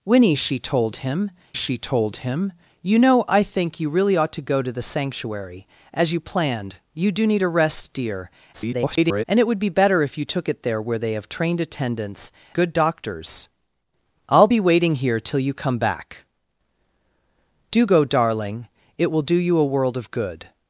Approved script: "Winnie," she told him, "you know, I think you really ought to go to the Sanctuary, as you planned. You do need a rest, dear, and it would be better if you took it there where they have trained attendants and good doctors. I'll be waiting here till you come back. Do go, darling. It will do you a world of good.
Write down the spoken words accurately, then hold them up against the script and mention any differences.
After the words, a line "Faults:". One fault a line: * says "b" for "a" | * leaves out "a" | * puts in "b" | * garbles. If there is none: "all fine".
"Winnie," she told him she told him, "you know, I think you really ought to go to the Sanctuary, as you planned. You do need a rest, dear, [garbled] and it would be better if you took it there where they have trained attendants good doctors. I'll be waiting here till you come back. Do go, darling. It will do you a world of good.
Faults:
* puts in "she told him"
* garbles
* leaves out "and"